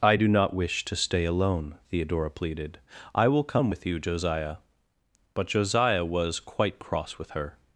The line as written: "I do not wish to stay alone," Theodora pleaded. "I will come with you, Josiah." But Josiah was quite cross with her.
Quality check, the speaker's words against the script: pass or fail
pass